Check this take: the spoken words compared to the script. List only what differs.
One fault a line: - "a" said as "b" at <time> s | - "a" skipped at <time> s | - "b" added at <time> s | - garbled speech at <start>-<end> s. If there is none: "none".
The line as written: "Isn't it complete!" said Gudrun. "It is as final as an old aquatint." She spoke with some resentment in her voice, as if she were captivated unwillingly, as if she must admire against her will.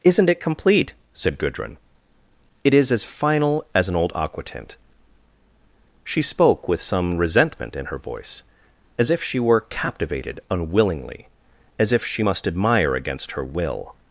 none